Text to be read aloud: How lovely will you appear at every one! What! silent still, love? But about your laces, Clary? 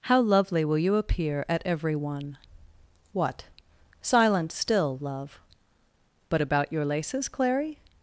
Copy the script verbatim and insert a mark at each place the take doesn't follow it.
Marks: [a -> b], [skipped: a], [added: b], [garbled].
How lovely will you appear at every one! What! silent still, love? But about your laces, Clary?